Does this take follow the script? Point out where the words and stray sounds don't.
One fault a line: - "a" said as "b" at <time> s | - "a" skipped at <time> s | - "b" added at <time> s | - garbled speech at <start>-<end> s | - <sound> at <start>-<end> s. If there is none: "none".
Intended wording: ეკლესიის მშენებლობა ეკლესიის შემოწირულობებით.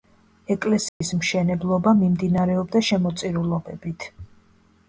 - dropout at 0.9-1.0 s
- "ეკლესიის" said as "მიმდინარეობდა" at 2.0 s